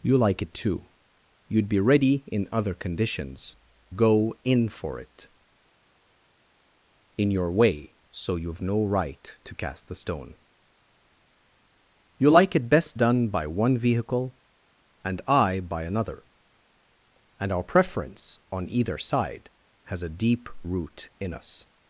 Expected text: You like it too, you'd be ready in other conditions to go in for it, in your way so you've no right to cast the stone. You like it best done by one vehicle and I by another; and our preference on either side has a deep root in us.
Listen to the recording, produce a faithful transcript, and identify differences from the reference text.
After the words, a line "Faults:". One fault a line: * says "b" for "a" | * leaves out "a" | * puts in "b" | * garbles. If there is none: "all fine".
You like it too, you'd be ready in other conditions go in for it, in your way so you've no right to cast the stone. You like it best done by one vehicle and I by another; and our preference on either side has a deep root in us.
Faults:
* leaves out "to"